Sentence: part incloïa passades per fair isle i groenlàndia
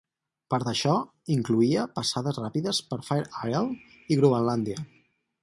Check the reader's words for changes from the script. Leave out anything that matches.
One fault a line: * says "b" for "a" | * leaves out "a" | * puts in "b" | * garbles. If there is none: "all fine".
* puts in "d'això"
* puts in "ràpides"